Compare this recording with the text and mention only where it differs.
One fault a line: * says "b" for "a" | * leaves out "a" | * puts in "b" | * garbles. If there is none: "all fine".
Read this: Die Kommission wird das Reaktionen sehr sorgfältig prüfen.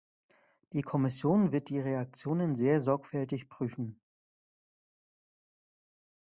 * says "die" for "das"